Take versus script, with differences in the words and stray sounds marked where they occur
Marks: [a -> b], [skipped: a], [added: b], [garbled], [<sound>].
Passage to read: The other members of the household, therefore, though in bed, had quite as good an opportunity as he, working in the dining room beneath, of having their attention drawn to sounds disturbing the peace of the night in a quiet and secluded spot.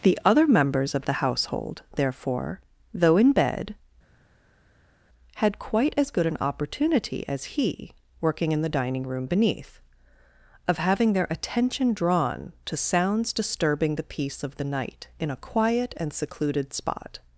The other members of the household, therefore, though in bed, had quite as good an opportunity as he, working in the dining room beneath, of having their attention drawn to sounds disturbing the peace of the night in a quiet and secluded spot.